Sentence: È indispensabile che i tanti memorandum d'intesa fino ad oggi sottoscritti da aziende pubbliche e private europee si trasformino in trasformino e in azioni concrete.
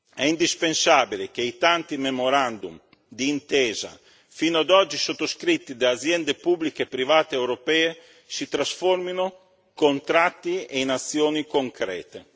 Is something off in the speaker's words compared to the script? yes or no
yes